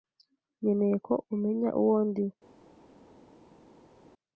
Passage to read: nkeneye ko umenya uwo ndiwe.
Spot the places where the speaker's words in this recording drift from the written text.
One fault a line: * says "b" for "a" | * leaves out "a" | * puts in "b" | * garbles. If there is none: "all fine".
all fine